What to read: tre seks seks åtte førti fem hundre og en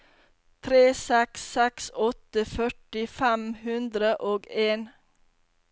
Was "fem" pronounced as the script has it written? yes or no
yes